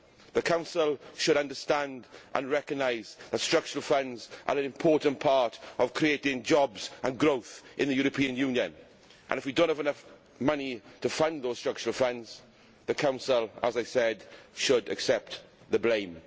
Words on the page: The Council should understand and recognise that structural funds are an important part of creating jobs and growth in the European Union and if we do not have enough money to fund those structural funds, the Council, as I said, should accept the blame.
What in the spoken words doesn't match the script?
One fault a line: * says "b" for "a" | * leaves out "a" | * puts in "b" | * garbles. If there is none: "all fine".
all fine